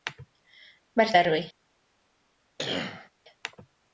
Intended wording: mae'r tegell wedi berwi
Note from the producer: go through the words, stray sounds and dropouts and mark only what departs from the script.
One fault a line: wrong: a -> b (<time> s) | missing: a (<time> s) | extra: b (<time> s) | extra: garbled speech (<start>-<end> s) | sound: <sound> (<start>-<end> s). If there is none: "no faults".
missing: tegell wedi (1.1 s)
sound: cough (2.6-3.1 s)